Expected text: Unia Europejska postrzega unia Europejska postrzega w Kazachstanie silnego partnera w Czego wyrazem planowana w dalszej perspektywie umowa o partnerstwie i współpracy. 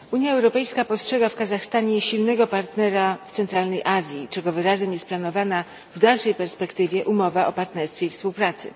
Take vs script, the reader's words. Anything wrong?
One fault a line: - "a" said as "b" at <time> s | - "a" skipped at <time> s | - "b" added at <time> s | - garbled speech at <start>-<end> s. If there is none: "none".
- "unia Europejska postrzega" skipped at 1.3 s
- "Centralnej Azji" added at 3.3 s
- "jest" added at 4.9 s